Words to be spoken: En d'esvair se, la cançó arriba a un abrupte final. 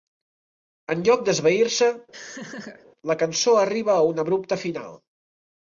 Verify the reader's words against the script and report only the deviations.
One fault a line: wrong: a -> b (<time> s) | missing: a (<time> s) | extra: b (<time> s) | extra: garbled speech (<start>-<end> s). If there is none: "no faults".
extra: lloc (1.1 s)